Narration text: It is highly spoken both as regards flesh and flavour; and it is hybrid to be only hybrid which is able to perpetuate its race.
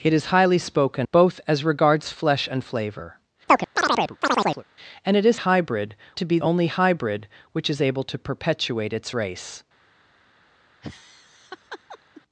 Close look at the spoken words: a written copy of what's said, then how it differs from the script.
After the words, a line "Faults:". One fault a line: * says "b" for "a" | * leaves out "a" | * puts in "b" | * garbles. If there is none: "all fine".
It is highly spoken both as regards flesh and flavour; and it is hybrid to be only hybrid which is able to perpetuate its race.
Faults:
all fine